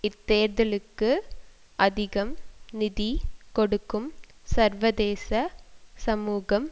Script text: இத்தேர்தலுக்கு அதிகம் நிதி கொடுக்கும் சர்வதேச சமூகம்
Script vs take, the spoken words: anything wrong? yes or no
no